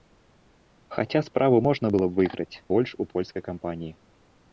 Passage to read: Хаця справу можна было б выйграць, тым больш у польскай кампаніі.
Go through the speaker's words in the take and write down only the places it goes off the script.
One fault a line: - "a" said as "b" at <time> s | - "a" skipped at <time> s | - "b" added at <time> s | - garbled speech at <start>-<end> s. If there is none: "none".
- "тым" skipped at 2.6 s